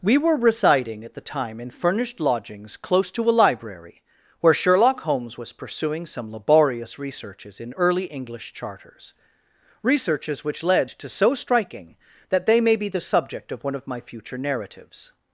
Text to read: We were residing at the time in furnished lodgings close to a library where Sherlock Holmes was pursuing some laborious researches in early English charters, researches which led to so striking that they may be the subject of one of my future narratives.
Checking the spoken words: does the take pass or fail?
pass